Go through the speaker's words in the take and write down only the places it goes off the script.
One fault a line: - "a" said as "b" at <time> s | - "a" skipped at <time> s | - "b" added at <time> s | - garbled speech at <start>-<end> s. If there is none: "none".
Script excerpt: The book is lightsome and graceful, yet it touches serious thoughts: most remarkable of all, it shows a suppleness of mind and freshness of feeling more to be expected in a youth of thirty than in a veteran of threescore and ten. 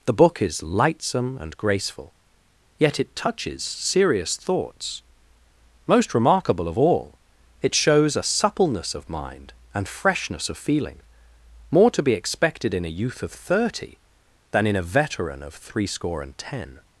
none